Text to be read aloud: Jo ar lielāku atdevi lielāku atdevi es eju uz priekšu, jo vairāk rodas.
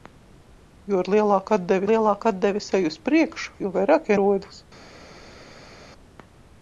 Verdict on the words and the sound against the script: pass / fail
pass